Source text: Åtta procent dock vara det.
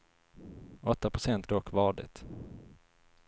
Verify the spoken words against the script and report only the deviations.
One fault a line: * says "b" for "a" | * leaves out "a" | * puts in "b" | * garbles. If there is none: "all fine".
all fine